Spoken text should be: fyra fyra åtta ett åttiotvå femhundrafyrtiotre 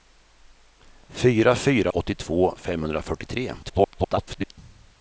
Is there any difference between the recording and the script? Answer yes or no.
yes